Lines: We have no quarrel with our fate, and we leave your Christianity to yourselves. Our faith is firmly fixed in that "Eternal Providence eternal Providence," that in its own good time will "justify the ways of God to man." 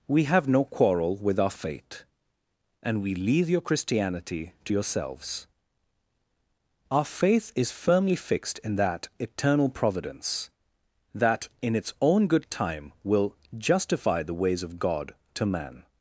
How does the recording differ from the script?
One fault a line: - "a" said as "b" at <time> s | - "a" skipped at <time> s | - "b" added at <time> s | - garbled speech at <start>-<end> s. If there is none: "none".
- "eternal Providence" skipped at 10.5 s